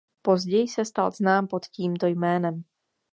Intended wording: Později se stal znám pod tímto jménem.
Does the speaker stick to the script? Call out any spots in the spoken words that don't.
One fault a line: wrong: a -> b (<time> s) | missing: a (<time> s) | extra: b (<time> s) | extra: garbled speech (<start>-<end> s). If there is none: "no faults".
no faults